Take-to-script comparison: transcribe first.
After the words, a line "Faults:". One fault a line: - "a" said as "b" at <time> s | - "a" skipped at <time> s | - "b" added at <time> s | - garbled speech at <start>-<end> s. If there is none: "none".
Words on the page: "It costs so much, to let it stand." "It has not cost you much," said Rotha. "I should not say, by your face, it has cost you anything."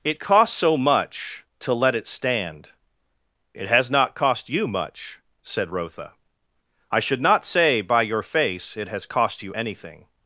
"It costs so much, to let it stand." "It has not cost you much," said Rotha. "I should not say, by your face, it has cost you anything."
Faults:
none